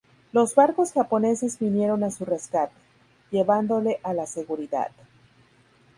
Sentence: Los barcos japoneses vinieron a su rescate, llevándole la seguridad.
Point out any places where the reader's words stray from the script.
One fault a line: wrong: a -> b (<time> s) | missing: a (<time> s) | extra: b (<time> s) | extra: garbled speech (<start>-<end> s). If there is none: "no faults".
extra: a (4.0 s)